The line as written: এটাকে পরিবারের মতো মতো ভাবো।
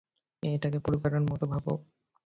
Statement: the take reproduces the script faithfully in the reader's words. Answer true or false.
false